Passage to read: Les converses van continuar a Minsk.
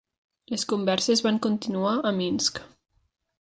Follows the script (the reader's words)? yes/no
yes